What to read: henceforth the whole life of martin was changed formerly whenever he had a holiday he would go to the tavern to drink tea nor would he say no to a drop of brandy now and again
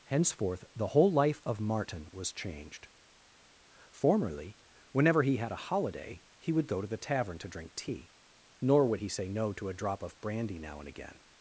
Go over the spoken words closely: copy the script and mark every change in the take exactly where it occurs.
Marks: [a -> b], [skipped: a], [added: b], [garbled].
henceforth the whole life of martin was changed formerly whenever he had a holiday he would go to the tavern to drink tea nor would he say no to a drop of brandy now and again